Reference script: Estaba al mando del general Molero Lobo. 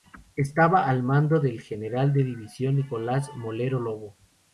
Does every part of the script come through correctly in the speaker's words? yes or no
no